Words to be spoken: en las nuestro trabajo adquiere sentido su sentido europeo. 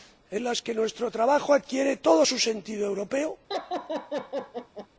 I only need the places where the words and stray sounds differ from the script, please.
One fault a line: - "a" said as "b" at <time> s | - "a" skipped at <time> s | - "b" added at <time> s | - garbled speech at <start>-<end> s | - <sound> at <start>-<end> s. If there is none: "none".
- "que" added at 0.6 s
- "sentido" said as "todo" at 2.0 s
- laugh at 3.5-4.9 s